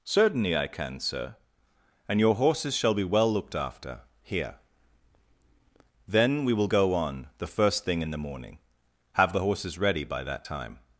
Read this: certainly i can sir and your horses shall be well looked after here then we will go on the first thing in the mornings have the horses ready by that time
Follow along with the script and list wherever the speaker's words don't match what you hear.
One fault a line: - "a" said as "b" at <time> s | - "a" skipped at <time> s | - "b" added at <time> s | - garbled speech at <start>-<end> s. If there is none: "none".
- "mornings" said as "morning" at 8.2 s